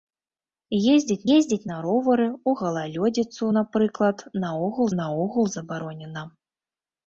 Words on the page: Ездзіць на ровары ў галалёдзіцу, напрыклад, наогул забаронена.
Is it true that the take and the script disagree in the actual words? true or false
true